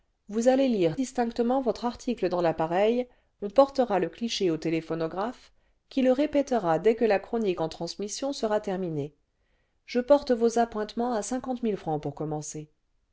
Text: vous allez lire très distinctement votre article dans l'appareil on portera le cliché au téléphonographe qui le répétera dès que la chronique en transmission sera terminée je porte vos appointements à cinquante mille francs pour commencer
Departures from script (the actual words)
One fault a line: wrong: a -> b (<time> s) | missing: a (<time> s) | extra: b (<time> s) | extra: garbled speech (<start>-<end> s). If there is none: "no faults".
missing: très (1.0 s)